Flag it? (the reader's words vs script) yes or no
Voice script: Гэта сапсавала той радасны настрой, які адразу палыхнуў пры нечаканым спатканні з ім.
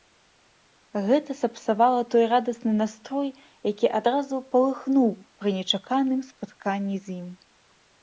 no